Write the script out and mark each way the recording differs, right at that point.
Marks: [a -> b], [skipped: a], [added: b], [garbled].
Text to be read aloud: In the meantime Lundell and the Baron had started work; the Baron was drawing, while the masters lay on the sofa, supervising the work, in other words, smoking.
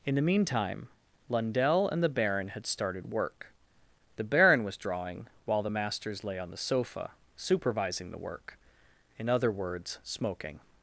In the meantime Lundell and the Baron had started work; the Baron was drawing, while the masters lay on the sofa, supervising the work, in other words, smoking.